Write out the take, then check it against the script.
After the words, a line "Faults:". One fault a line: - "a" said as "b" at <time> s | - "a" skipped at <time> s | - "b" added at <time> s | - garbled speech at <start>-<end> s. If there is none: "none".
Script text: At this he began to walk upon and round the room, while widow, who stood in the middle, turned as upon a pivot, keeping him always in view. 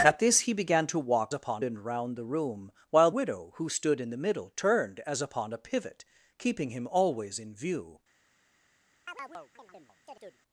At this he began to walk upon and round the room, while widow, who stood in the middle, turned as upon a pivot, keeping him always in view.
Faults:
none